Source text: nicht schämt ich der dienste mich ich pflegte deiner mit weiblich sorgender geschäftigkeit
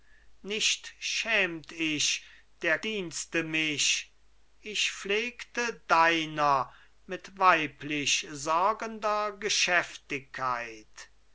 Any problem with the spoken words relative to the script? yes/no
no